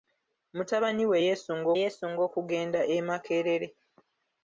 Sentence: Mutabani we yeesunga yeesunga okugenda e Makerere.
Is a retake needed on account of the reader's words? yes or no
no